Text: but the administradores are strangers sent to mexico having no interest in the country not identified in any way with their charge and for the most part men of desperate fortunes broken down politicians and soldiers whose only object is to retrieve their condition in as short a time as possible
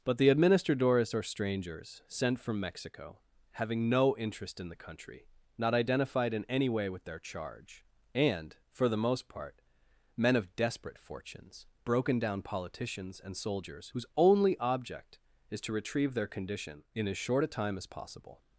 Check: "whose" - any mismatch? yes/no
no